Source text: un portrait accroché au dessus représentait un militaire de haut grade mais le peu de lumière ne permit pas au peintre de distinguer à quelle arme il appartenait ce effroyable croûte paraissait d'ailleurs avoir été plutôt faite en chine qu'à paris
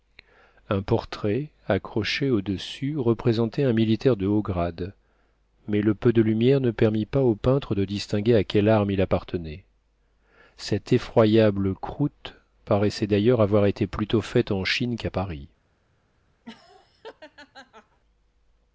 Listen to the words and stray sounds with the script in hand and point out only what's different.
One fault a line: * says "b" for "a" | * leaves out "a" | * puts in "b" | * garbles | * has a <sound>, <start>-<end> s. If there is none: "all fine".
* says "cette" for "ce"
* has a laugh, 16.4-18.0 s